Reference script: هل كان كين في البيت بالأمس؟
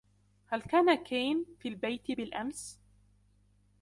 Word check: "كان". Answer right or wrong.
right